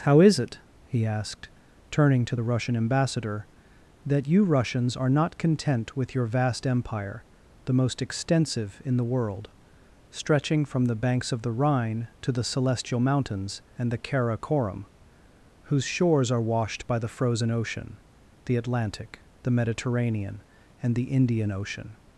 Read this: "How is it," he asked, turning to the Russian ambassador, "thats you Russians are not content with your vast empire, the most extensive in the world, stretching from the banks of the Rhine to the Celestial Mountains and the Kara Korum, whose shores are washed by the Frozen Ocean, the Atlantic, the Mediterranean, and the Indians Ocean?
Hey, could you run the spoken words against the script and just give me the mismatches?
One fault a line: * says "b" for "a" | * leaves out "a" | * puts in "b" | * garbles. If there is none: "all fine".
* says "that" for "thats"
* says "Indian" for "Indians"